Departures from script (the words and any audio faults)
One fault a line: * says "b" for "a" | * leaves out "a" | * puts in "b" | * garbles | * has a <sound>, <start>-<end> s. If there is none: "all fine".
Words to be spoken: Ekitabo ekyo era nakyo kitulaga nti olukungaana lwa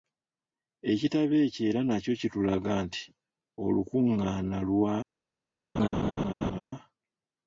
* has a laugh, 5.8-6.6 s